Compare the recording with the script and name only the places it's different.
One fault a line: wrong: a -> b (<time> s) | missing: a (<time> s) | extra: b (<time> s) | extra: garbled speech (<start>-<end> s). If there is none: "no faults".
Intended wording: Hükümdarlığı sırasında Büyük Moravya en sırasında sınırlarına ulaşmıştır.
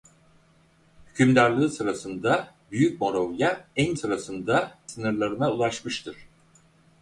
no faults